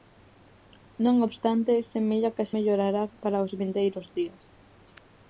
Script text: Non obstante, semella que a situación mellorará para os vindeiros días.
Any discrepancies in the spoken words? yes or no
yes